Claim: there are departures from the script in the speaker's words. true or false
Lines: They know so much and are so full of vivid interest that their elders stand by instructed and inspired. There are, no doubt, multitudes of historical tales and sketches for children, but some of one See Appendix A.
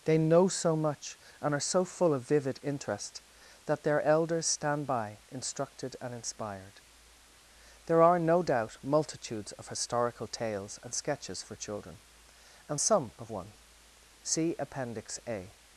true